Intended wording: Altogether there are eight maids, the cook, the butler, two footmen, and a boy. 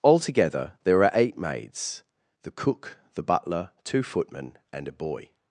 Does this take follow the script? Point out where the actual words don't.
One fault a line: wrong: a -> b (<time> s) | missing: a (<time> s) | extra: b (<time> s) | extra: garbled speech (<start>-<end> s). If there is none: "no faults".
no faults